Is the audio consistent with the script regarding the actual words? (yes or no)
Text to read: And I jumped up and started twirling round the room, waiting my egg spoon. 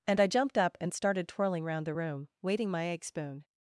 yes